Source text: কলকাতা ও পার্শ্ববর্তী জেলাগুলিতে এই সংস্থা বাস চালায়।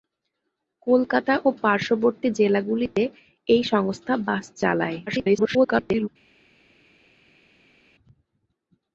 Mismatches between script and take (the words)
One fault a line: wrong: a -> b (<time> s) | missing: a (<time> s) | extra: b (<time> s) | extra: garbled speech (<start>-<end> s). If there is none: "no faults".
extra: garbled speech (5.1-6.1 s)